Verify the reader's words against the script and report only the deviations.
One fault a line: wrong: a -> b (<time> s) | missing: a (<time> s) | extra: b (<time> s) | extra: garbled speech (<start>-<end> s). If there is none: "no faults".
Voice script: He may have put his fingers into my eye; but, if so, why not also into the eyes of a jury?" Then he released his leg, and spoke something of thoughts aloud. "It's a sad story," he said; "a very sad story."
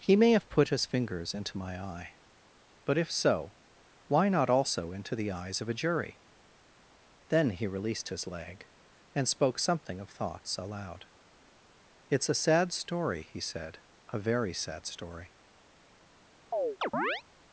no faults